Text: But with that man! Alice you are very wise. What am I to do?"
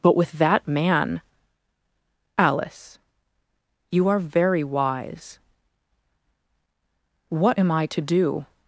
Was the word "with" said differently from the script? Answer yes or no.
no